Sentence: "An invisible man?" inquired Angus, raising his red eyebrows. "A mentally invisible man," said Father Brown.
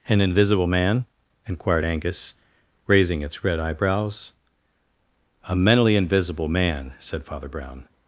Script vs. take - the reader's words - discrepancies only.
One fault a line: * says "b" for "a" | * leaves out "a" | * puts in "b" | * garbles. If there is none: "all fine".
* says "its" for "his"